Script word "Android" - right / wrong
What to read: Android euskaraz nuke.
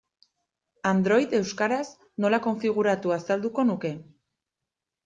right